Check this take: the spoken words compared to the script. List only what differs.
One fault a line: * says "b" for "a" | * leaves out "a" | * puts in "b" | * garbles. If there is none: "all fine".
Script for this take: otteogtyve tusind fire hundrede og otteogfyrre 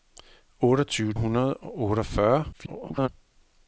* leaves out "tusind fire"
* garbles